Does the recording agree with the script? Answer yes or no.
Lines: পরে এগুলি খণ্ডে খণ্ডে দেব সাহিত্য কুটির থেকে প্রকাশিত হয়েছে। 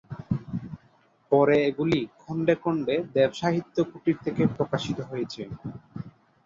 yes